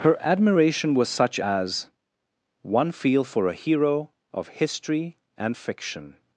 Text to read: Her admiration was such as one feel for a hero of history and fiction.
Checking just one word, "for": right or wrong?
right